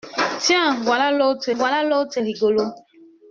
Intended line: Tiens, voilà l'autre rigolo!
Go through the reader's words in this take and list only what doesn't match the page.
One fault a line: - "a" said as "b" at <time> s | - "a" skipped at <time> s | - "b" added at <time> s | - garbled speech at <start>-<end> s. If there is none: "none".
- "voilà l'autre" added at 1.5 s